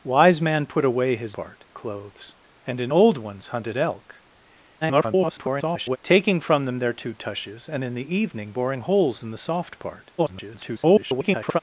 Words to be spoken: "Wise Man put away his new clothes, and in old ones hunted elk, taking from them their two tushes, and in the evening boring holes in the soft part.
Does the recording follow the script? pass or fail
fail